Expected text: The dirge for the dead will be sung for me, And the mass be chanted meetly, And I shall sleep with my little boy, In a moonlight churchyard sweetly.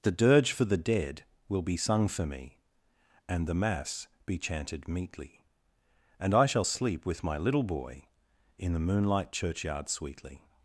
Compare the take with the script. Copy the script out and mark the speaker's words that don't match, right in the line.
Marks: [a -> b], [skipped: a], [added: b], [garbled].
The dirge for the dead will be sung for me, And the mass be chanted meetly, And I shall sleep with my little boy, In [a -> the] moonlight churchyard sweetly.